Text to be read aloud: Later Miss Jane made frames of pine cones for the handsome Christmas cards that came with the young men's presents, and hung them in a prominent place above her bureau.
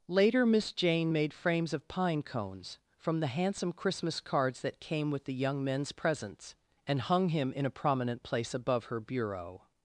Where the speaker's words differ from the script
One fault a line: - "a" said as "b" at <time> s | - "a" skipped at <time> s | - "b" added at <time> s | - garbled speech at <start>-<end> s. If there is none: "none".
- "for" said as "from" at 3.0 s
- "them" said as "him" at 7.3 s